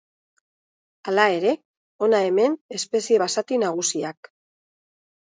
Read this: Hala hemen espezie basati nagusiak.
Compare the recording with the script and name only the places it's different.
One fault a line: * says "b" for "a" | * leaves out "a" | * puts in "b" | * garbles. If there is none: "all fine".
* puts in "ere hona"